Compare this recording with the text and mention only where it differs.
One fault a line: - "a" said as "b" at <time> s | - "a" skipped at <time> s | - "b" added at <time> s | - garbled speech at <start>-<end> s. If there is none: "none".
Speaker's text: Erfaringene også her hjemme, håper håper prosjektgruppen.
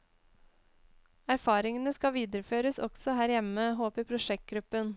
- "skal videreføres" added at 1.9 s
- "håper" skipped at 4.1 s